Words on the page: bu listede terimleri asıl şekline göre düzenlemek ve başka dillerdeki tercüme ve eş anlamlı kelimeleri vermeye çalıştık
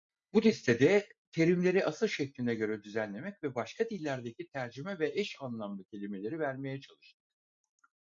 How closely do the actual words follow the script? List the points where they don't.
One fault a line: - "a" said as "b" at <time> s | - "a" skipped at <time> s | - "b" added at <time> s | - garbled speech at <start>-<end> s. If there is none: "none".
none